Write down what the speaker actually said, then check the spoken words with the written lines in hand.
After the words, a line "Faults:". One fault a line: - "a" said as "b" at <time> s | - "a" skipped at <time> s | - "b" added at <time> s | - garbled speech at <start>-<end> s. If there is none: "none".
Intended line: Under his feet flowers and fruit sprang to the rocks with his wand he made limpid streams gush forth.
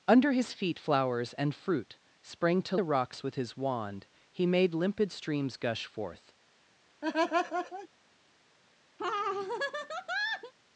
Under his feet flowers and fruit sprang to the rocks with his wand he made limpid streams gush forth.
Faults:
none